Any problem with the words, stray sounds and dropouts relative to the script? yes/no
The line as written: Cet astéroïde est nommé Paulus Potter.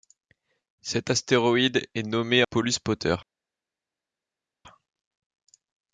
no